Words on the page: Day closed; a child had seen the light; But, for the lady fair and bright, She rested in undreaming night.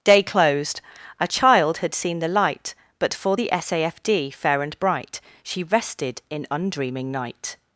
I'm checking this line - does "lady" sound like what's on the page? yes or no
no